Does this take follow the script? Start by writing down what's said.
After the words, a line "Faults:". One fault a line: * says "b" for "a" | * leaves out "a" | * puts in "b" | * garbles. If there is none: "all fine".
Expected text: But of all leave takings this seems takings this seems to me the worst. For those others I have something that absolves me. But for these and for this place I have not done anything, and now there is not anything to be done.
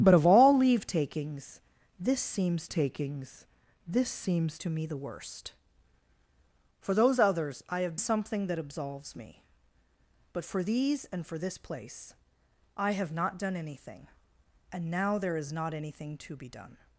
But of all leave takings this seems takings this seems to me the worst. For those others I have something that absolves me. But for these and for this place I have not done anything, and now there is not anything to be done.
Faults:
all fine